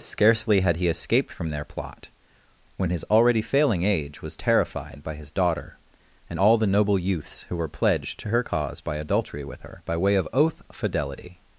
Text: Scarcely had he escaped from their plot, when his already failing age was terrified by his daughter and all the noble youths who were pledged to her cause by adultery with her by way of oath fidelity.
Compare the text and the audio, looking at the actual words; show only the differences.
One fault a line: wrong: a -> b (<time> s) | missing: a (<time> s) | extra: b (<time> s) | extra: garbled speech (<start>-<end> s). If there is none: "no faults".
no faults